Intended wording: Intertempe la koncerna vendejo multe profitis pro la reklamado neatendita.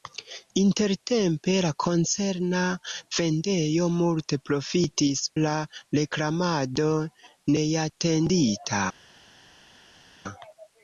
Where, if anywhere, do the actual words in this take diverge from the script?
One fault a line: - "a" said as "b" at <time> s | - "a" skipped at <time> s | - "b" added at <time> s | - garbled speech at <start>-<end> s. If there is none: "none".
- "pro" skipped at 5.2 s